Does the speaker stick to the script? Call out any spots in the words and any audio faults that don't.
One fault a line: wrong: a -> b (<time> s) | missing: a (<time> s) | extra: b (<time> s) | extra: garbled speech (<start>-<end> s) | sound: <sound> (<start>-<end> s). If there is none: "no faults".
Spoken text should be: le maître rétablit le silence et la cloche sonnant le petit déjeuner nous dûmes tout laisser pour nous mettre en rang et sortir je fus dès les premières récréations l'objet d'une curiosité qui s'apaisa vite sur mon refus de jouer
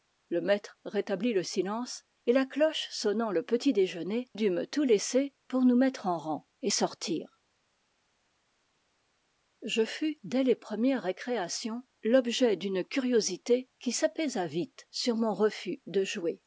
missing: nous (4.3 s)